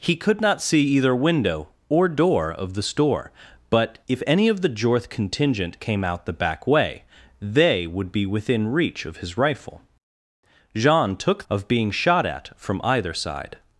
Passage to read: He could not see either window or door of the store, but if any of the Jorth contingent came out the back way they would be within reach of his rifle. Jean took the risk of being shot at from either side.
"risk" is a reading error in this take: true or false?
true